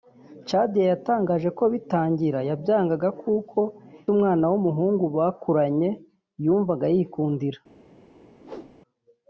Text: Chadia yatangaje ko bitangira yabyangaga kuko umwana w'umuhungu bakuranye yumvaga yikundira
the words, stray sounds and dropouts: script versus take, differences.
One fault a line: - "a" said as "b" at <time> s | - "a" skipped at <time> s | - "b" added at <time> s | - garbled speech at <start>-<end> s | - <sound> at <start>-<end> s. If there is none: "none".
- whoosh at 8.4-8.8 s